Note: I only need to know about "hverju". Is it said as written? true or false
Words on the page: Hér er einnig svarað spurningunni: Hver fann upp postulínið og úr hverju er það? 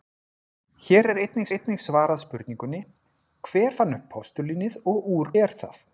false